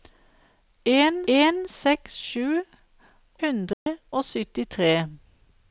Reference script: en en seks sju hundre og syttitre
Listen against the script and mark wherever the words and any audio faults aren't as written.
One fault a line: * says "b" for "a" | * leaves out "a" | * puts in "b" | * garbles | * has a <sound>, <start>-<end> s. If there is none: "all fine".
* has a dropout, 3.7-3.9 s